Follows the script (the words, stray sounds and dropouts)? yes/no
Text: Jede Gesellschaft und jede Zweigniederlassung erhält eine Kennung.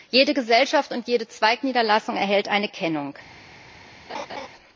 no